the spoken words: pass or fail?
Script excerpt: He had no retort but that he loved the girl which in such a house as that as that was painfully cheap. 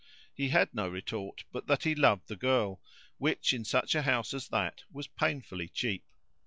fail